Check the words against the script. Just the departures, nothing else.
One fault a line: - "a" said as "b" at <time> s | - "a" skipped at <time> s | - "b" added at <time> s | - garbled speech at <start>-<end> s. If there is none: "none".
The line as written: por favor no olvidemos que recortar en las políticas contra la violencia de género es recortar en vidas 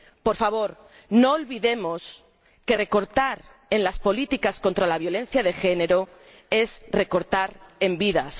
none